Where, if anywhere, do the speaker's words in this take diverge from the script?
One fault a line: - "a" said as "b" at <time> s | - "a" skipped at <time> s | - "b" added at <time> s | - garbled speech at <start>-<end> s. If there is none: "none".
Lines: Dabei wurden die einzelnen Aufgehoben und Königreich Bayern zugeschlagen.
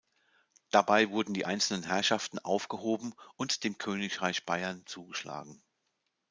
- "Herrschaften" added at 1.8 s
- "dem" added at 3.6 s